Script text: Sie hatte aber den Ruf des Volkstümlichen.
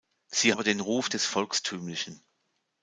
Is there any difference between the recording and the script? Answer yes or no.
yes